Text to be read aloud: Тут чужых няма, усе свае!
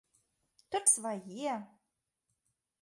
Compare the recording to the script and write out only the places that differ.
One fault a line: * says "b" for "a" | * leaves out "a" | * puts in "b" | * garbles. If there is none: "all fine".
* leaves out "чужых няма усе"